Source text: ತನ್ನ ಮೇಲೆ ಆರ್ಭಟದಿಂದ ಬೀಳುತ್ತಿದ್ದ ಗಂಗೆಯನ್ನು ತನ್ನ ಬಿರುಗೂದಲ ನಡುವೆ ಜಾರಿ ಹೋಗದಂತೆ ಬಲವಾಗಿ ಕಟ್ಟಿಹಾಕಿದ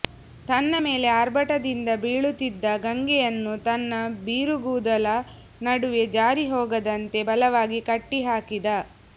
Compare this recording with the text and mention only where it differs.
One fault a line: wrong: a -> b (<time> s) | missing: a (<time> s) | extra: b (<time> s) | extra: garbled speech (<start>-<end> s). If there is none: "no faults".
no faults